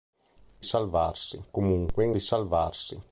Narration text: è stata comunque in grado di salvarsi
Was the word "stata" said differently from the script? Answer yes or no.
yes